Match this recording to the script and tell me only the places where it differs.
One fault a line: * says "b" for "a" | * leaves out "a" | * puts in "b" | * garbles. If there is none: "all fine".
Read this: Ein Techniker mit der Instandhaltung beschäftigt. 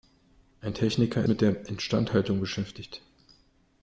all fine